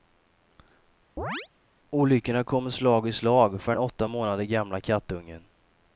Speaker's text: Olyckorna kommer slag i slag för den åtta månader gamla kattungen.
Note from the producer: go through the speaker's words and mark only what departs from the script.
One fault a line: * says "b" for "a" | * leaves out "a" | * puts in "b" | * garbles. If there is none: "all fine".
all fine